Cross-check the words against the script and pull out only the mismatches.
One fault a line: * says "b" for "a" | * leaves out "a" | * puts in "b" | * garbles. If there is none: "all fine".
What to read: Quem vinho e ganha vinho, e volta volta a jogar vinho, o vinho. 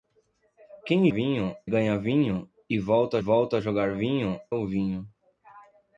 all fine